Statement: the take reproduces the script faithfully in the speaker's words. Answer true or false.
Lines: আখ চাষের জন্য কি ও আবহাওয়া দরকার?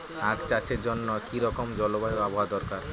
false